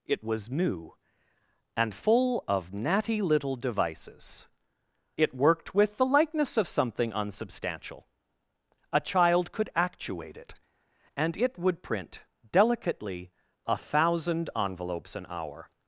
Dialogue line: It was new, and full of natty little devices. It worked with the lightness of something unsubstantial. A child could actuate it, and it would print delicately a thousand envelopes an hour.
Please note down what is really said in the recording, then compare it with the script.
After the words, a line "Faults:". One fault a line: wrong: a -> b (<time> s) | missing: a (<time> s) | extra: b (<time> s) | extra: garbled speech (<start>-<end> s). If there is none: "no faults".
It was new, and full of natty little devices. It worked with the likeness of something unsubstantial. A child could actuate it, and it would print delicately a thousand envelopes an hour.
Faults:
wrong: lightness -> likeness (6.0 s)